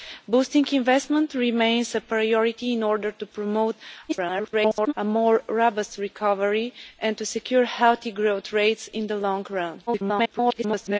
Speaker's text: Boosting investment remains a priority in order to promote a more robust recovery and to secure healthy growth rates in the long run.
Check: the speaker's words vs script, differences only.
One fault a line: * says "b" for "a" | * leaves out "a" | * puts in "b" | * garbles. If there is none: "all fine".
* garbles
* garbles